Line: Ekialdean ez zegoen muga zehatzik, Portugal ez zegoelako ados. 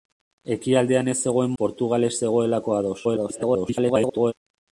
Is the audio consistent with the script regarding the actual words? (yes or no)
no